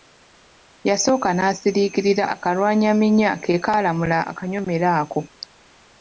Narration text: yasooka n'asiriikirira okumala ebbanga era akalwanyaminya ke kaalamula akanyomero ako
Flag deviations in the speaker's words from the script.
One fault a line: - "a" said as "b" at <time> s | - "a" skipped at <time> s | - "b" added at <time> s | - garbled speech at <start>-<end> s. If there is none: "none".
- "okumala ebbanga era" skipped at 2.2 s